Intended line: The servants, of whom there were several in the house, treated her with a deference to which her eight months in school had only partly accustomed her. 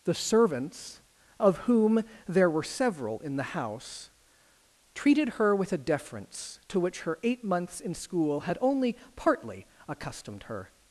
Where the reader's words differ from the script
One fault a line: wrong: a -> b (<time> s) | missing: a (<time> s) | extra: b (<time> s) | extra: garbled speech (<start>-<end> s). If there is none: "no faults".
no faults